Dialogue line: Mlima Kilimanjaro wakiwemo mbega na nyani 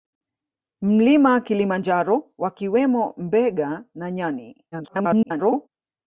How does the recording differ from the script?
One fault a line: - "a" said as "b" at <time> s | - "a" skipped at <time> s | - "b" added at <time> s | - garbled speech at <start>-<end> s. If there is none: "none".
- garbled speech at 4.7-5.7 s